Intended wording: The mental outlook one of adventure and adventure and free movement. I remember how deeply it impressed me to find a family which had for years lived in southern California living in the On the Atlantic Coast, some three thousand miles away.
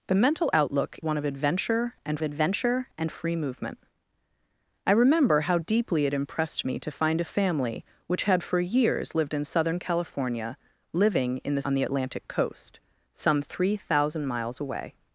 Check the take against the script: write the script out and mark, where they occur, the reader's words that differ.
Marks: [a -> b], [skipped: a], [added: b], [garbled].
The mental outlook one of adventure and adventure and free movement. I remember how deeply it impressed me to find a family which had for years lived in southern California living in the On the Atlantic Coast, some three thousand miles away.